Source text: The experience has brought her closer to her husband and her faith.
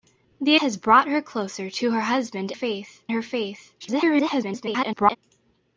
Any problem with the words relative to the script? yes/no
yes